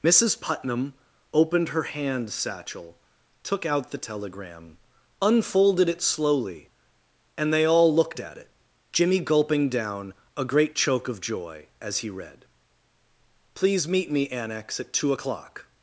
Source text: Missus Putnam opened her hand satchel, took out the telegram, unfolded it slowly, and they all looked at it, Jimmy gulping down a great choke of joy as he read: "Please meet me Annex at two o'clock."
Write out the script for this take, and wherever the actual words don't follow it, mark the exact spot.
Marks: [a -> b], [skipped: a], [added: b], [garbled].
Missus Putnam opened her hand satchel, took out the telegram, unfolded it slowly, and they all looked at it, Jimmy gulping down a great choke of joy as he read: "Please meet me Annex at two o'clock."